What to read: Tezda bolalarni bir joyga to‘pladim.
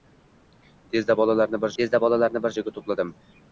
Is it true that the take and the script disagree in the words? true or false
true